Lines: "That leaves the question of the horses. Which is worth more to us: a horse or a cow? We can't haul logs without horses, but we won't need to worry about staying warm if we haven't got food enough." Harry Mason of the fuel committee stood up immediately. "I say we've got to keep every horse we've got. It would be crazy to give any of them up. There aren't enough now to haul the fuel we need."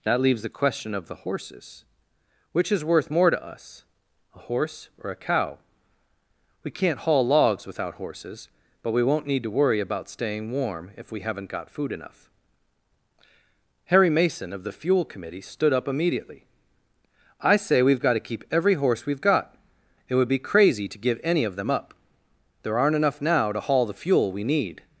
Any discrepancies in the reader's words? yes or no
no